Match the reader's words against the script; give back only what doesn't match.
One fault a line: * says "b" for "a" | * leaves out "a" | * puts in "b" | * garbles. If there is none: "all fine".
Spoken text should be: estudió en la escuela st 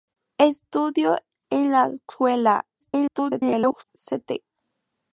* garbles